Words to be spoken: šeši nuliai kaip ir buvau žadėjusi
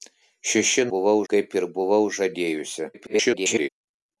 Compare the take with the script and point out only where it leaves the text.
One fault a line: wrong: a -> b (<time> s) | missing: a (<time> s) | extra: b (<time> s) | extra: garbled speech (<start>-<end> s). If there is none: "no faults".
wrong: nuliai -> buvau (0.9 s)
extra: garbled speech (2.9-3.7 s)